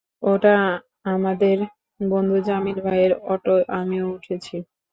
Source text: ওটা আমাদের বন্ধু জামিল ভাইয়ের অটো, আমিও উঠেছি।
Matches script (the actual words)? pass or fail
pass